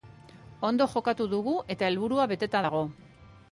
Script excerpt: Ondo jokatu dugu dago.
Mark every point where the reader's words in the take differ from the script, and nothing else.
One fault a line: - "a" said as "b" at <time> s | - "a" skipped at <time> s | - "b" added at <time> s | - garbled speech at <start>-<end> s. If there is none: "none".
- "eta helburua beteta" added at 1.8 s